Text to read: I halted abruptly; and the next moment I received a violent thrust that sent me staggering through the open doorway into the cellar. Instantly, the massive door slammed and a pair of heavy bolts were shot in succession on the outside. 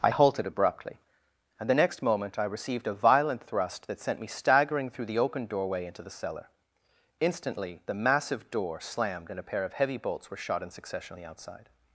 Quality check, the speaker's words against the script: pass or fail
pass